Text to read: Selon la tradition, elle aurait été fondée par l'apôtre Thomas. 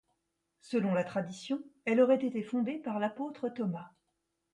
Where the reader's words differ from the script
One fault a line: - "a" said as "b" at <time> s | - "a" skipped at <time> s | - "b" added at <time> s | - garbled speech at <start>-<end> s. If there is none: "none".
none